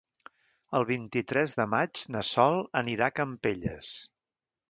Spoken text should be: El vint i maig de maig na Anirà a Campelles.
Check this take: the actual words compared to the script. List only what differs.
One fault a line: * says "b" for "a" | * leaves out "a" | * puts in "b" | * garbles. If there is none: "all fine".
* says "tres" for "maig"
* puts in "Sol"